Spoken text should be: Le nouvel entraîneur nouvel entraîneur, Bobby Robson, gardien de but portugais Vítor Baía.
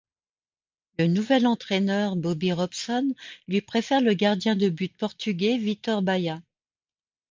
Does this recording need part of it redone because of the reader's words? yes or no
yes